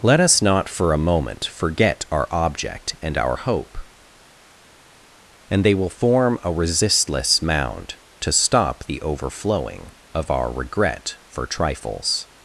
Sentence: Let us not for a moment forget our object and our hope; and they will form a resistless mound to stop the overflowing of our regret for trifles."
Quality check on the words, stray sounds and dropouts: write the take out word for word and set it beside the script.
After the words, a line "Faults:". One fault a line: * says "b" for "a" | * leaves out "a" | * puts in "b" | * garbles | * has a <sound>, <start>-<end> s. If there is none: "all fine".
Let us not for a moment forget our object and our hope; and they will form a resistless mound to stop the overflowing of our regret for trifles."
Faults:
all fine